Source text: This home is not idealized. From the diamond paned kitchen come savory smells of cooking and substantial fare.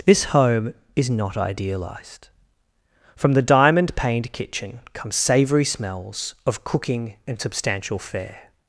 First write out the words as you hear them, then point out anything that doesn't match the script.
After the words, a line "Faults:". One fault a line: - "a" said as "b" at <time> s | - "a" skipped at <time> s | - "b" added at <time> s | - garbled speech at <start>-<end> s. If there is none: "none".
This home is not idealized. From the diamond paned kitchen come savory smells of cooking and substantial fare.
Faults:
none